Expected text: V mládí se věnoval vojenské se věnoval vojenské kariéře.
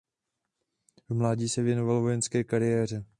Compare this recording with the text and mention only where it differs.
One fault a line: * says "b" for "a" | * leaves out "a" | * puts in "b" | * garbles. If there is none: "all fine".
* leaves out "se věnoval vojenské"